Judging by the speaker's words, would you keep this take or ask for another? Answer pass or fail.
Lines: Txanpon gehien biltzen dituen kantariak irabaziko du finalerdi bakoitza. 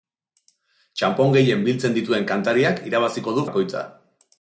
fail